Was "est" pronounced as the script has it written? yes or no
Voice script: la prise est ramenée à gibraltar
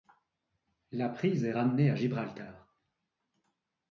yes